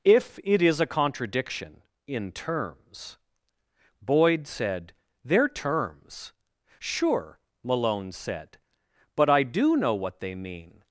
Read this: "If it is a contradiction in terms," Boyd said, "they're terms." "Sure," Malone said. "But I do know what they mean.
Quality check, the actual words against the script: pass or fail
pass